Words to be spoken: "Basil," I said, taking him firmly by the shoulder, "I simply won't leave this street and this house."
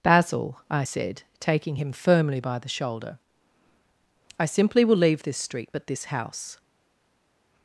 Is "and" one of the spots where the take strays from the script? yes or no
yes